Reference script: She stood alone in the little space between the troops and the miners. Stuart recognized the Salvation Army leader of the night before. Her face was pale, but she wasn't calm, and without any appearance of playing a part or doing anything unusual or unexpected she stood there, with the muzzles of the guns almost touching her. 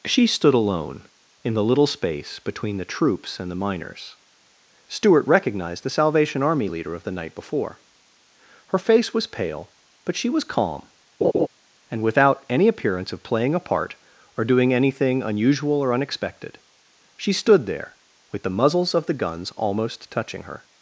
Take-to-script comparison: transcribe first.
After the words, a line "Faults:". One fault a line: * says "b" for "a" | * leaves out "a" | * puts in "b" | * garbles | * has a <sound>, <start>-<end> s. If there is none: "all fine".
She stood alone in the little space between the troops and the miners. Stuart recognized the Salvation Army leader of the night before. Her face was pale, but she was calm, and without any appearance of playing a part or doing anything unusual or unexpected she stood there, with the muzzles of the guns almost touching her.
Faults:
* says "was" for "wasn't"
* has a laugh, 11.2-11.5 s